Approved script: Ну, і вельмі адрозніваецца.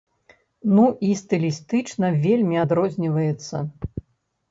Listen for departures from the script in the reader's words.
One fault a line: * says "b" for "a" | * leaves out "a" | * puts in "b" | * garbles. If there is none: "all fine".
* puts in "стылістычна"